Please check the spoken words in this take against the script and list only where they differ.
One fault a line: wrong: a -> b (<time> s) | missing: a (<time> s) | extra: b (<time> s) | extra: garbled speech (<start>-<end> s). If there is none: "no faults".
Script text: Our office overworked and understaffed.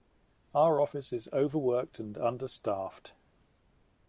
extra: is (1.1 s)